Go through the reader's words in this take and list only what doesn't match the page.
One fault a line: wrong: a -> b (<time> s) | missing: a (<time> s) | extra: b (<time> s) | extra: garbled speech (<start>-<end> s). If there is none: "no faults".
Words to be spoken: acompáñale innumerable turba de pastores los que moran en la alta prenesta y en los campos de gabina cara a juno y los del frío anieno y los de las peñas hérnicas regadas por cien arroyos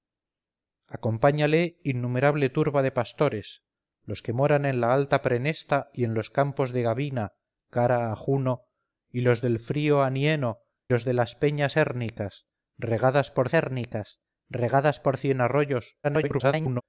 missing: y (10.6 s)
extra: hérnicas regadas por (13.5 s)
extra: garbled speech (16.0-16.8 s)